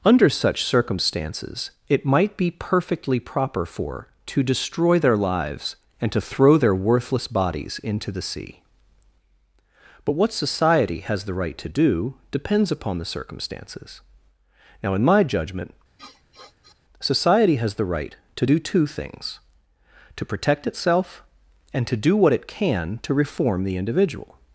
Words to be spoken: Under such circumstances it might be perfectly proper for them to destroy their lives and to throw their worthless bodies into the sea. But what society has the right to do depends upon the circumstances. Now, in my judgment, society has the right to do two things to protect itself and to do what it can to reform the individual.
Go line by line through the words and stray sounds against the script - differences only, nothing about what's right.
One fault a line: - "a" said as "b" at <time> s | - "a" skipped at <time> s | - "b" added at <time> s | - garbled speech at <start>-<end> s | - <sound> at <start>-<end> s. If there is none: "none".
- "them" skipped at 4.1 s
- sniff at 16.0-16.8 s